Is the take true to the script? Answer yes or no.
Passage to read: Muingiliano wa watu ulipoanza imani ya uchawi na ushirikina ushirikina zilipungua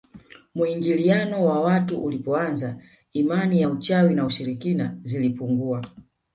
no